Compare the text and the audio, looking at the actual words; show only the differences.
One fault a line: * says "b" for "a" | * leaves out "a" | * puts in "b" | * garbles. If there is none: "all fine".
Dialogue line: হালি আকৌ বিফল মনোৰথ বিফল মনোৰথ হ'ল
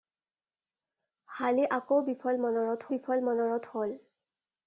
all fine